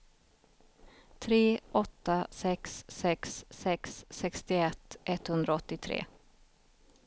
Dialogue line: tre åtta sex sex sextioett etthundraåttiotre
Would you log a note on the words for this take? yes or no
yes